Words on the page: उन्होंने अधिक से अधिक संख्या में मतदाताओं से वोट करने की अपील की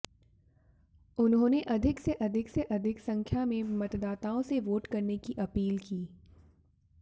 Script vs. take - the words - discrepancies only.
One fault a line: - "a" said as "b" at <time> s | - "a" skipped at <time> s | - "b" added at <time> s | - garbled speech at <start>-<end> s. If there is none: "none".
- "से अधिक" added at 2.5 s